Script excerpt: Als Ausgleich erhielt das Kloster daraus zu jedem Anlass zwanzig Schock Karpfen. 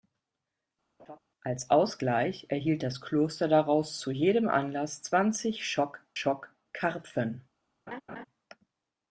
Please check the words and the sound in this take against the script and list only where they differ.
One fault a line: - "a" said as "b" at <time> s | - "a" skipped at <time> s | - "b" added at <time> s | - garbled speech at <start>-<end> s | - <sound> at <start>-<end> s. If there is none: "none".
- laugh at 1.0-1.2 s
- "Schock" added at 6.1 s
- laugh at 7.9-8.3 s